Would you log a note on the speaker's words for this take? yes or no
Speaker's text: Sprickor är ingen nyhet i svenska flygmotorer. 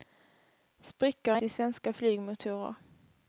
yes